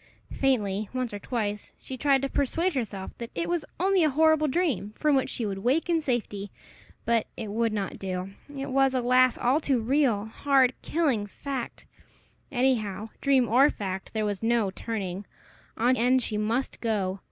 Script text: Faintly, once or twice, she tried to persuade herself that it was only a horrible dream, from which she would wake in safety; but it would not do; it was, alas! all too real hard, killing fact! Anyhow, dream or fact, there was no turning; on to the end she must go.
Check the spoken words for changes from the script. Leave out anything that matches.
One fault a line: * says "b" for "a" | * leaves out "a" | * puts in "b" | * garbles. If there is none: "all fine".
* leaves out "to the"